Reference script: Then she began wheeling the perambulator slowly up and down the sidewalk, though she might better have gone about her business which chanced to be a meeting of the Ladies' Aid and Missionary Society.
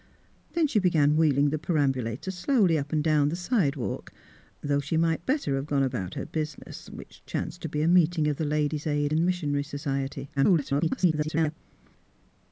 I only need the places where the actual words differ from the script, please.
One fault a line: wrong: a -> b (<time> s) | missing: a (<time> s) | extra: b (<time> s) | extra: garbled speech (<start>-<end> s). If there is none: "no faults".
extra: garbled speech (10.4-11.6 s)